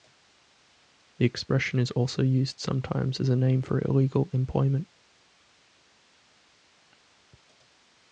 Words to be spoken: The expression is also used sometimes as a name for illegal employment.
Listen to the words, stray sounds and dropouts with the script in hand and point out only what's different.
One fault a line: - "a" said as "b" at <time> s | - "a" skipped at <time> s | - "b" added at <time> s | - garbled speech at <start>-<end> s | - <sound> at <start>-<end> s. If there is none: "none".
none